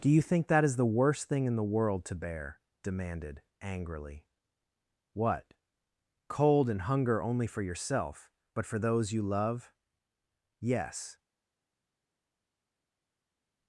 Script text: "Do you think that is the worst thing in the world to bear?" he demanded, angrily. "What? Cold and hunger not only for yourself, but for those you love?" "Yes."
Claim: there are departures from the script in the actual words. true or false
true